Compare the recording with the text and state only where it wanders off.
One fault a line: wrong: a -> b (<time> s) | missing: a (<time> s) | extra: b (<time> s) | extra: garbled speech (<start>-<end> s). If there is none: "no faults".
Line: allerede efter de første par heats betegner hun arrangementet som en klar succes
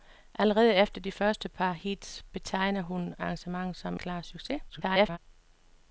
missing: en (4.0 s)
extra: garbled speech (4.7-5.2 s)